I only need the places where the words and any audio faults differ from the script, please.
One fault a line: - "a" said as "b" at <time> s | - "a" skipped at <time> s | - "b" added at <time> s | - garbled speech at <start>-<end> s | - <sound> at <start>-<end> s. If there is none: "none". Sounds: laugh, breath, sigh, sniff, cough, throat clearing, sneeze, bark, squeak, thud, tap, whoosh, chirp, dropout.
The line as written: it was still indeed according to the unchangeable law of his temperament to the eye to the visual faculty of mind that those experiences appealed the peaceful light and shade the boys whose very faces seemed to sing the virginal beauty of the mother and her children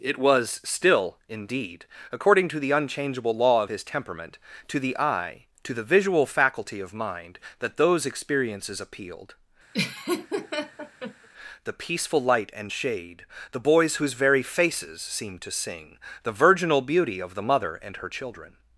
- laugh at 9.7-11.3 s